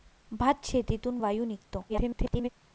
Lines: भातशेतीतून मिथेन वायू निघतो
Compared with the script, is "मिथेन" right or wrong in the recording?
wrong